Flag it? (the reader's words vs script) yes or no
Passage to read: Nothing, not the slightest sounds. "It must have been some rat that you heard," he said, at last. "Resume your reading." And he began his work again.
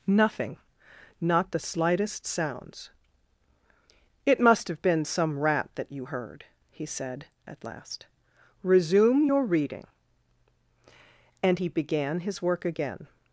no